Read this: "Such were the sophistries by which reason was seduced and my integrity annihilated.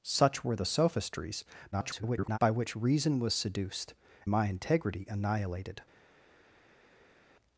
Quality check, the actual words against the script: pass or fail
fail